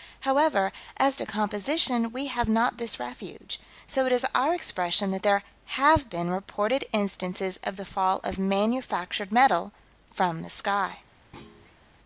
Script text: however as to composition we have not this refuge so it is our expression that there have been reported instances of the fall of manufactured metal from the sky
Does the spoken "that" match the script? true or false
true